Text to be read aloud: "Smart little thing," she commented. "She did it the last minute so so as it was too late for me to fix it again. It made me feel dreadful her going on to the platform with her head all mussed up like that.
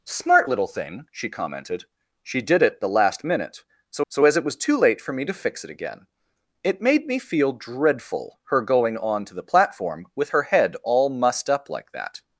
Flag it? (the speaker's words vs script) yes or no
no